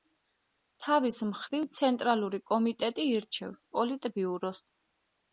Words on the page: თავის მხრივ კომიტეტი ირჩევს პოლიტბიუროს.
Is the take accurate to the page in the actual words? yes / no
no